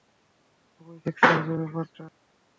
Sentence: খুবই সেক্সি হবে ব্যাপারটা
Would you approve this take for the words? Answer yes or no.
yes